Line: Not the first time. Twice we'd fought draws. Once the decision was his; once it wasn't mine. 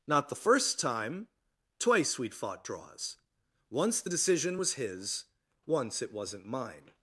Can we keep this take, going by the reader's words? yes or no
yes